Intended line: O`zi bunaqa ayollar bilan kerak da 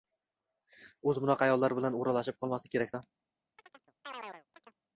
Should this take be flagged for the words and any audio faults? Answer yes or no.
yes